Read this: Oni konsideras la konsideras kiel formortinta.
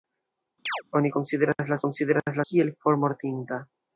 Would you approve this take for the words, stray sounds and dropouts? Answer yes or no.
no